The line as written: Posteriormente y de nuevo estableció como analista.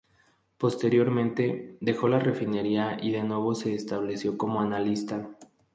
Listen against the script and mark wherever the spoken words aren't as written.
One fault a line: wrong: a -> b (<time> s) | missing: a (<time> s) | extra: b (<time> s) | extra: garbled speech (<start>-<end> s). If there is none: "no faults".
extra: dejó la refinería (1.8 s)
extra: se (3.6 s)